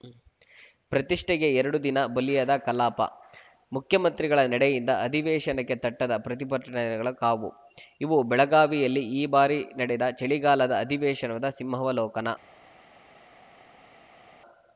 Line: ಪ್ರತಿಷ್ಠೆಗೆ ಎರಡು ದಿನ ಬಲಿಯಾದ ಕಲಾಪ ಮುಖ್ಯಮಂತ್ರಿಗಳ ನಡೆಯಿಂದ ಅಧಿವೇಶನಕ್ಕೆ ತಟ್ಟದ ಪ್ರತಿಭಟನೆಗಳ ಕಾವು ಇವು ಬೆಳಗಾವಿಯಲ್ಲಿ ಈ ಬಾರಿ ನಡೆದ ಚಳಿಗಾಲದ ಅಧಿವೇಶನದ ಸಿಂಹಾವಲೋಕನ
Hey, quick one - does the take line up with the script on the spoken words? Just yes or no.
yes